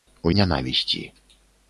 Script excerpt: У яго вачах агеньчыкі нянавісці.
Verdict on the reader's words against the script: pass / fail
fail